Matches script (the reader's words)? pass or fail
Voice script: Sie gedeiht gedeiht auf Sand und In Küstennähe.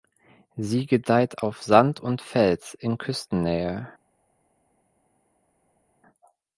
fail